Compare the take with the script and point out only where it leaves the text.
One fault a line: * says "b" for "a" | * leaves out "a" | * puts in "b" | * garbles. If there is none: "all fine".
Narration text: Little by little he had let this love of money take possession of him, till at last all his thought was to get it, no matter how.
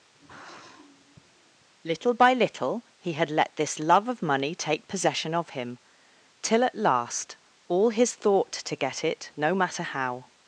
* leaves out "was"